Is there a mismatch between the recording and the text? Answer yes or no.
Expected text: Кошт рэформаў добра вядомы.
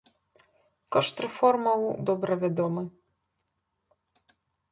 no